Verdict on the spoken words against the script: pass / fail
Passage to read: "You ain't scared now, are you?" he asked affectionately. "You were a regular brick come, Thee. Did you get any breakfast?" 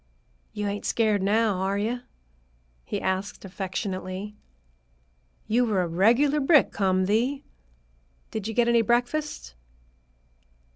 pass